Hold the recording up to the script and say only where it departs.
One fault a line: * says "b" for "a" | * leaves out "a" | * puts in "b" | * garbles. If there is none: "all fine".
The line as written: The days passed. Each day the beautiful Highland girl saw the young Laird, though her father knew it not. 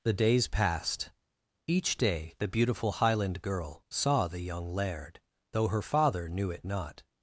all fine